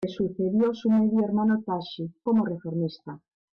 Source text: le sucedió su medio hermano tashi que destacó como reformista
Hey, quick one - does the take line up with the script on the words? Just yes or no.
no